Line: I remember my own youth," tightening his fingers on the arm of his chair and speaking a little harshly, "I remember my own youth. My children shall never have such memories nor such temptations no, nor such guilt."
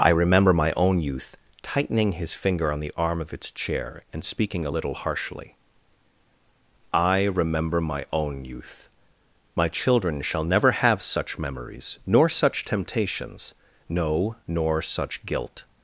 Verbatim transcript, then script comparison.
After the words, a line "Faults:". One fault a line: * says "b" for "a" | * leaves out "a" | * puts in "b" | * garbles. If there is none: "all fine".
I remember my own youth," tightening his finger on the arm of its chair and speaking a little harshly, "I remember my own youth. My children shall never have such memories nor such temptations no, nor such guilt."
Faults:
* says "finger" for "fingers"
* says "its" for "his"